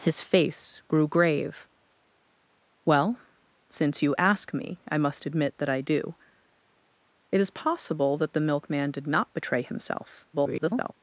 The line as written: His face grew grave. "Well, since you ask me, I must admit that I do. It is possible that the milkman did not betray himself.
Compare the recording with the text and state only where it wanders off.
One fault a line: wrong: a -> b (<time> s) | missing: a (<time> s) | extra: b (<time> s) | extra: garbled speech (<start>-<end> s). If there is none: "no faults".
extra: garbled speech (10.3-10.9 s)